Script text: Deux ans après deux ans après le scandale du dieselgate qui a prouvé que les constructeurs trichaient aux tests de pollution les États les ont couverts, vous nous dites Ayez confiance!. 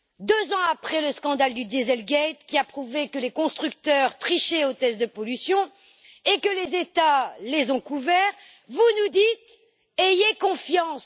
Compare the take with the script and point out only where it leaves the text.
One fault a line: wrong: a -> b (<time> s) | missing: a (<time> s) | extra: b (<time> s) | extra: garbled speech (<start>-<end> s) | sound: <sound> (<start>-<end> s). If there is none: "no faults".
missing: deux ans après (1.0 s)
extra: et que (6.2 s)